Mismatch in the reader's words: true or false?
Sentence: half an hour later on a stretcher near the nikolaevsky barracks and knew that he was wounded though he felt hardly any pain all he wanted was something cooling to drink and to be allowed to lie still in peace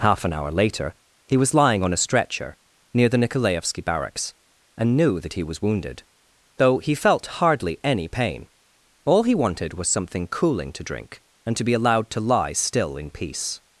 true